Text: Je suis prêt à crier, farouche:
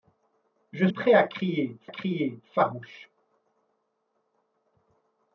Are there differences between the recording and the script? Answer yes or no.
yes